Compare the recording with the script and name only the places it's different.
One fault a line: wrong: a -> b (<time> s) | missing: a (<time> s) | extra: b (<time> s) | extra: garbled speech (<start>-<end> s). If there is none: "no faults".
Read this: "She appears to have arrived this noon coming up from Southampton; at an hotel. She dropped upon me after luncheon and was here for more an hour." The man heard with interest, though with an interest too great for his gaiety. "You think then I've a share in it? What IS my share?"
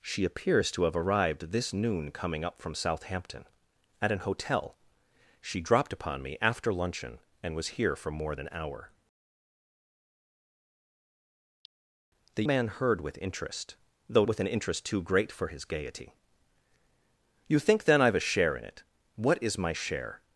no faults